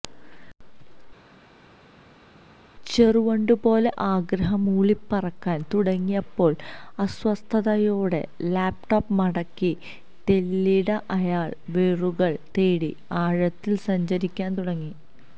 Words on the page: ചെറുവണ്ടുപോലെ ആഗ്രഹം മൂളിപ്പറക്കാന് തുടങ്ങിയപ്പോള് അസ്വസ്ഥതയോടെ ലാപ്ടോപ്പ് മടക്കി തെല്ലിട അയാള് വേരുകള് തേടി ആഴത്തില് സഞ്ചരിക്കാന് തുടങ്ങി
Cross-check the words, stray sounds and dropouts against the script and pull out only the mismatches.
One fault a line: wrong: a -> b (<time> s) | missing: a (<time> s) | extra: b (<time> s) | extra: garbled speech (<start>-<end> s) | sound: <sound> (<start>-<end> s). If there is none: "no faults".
no faults